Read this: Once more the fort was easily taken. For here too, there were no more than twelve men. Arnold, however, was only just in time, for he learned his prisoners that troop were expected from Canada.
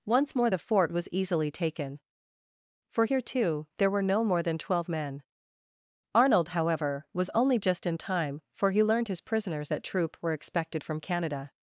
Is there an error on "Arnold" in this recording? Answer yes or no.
no